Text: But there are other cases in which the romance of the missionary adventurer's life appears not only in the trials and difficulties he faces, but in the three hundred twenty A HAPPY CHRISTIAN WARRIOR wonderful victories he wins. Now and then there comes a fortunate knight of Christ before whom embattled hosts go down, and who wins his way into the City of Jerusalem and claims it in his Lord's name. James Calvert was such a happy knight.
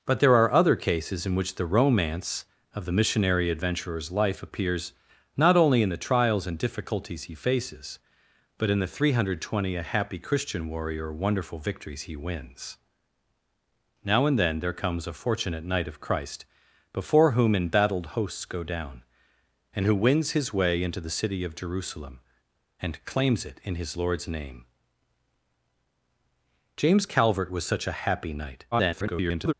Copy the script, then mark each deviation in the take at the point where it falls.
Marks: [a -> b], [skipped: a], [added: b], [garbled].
But there are other cases in which the romance of the missionary adventurer's life appears not only in the trials and difficulties he faces, but in the three hundred twenty A HAPPY CHRISTIAN WARRIOR wonderful victories he wins. Now and then there comes a fortunate knight of Christ before whom embattled hosts go down, and who wins his way into the City of Jerusalem and claims it in his Lord's name. James Calvert was such a happy knight. [garbled]